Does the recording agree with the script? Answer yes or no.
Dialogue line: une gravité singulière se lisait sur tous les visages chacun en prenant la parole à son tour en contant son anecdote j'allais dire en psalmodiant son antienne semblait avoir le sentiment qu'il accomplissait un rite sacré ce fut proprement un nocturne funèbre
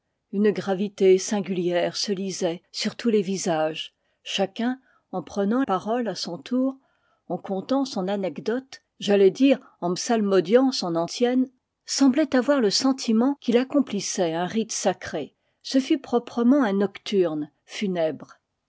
no